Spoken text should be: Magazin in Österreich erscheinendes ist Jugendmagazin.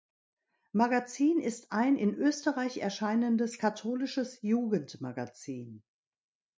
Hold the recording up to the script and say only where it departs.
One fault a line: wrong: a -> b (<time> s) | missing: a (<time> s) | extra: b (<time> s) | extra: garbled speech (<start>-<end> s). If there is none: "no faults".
extra: ist ein (1.4 s)
wrong: ist -> katholisches (3.6 s)